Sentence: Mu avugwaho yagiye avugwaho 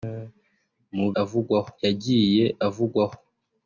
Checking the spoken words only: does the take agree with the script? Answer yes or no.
yes